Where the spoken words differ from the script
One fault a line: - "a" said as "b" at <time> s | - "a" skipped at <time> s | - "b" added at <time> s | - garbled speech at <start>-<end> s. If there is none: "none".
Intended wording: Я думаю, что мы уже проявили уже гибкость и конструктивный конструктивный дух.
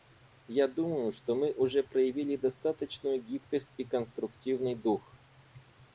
- "уже" said as "достаточную" at 2.4 s
- "конструктивный" skipped at 4.8 s